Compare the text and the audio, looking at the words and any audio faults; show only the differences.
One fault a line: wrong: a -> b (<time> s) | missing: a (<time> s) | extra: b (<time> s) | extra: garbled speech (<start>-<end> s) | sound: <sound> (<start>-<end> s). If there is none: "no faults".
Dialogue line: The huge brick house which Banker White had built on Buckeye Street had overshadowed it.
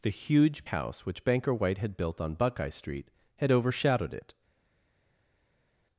missing: brick (0.7 s)